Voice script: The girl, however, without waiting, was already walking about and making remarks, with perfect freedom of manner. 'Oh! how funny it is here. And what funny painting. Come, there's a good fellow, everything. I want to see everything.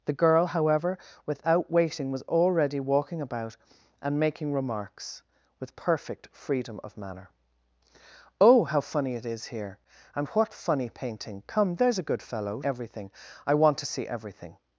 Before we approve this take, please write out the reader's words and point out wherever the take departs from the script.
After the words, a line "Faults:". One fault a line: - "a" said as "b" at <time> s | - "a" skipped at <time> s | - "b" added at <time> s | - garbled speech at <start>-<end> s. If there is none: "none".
The girl, however, without waiting, was already walking about and making remarks, with perfect freedom of manner. 'Oh! how funny it is here. And what funny painting. Come, there's a good fellow, everything. I want to see everything.
Faults:
none